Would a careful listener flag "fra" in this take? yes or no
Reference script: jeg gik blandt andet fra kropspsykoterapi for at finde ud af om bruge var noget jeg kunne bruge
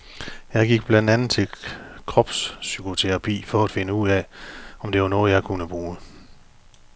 yes